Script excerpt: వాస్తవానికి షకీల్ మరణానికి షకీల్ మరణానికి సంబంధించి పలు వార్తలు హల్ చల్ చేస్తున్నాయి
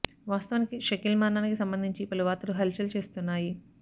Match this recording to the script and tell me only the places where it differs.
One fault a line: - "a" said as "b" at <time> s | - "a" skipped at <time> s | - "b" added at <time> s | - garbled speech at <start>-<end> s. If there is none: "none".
- "షకీల్ మరణానికి" skipped at 1.6 s